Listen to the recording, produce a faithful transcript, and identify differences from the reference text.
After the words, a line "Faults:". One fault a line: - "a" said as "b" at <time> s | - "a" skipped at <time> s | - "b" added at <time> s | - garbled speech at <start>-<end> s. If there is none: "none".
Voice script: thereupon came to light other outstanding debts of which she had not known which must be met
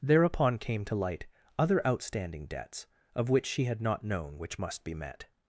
thereupon came to light other outstanding debts of which she had not known which must be met
Faults:
none